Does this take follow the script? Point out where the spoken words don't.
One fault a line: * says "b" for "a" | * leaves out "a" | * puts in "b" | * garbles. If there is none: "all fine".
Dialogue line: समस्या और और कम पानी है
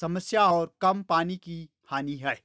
* leaves out "और"
* puts in "की हानि"